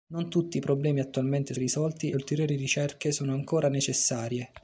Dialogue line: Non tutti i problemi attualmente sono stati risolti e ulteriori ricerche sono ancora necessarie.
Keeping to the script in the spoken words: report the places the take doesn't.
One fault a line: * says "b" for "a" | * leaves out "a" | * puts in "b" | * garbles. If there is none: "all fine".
* leaves out "sono stati"